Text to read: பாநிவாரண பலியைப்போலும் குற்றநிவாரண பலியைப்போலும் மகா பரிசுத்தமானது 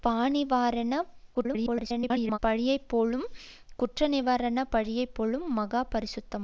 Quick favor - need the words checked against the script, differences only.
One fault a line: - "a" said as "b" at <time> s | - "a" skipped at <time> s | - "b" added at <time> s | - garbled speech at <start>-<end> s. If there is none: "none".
- garbled speech at 1.3-2.4 s